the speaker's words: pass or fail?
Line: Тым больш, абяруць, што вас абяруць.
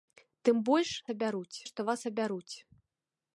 pass